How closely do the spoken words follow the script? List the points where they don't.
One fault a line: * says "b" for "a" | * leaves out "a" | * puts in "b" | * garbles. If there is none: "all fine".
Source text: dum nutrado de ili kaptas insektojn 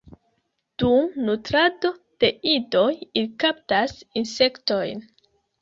* puts in "idoj"